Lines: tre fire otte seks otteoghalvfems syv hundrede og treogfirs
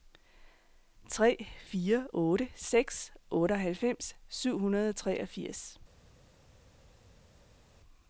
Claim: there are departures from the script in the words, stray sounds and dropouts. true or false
false